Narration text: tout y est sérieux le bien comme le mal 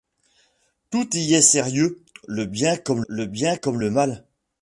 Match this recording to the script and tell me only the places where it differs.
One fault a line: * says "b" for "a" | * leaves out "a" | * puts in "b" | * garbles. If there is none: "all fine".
* puts in "bien comme le"